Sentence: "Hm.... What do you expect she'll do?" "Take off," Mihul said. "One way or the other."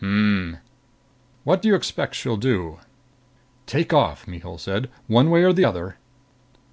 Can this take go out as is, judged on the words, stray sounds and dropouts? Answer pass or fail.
pass